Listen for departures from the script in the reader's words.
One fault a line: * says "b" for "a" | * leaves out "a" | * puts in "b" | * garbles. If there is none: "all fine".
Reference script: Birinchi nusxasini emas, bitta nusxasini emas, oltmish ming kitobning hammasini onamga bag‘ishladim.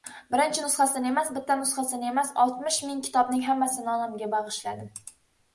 all fine